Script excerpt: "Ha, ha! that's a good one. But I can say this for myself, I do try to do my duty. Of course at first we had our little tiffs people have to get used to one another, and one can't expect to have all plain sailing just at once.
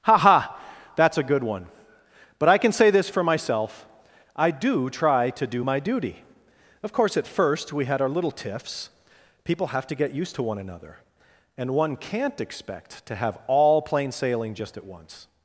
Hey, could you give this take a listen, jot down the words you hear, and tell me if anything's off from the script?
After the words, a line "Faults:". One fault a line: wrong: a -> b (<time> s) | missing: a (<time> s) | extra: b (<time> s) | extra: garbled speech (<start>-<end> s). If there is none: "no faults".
"Ha, ha! that's a good one. But I can say this for myself, I do try to do my duty. Of course at first we had our little tiffs people have to get used to one another, and one can't expect to have all plain sailing just at once.
Faults:
no faults